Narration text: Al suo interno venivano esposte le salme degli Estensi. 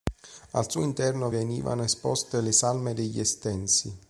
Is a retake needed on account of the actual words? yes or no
no